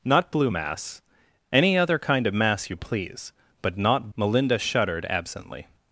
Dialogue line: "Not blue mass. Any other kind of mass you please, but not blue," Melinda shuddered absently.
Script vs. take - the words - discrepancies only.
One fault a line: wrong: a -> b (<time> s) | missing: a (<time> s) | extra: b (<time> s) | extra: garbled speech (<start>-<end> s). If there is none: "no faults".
missing: blue (4.1 s)